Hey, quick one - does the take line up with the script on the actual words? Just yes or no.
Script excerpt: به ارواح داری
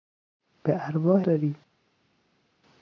yes